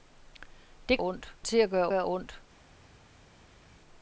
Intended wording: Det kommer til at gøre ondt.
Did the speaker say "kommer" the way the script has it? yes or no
no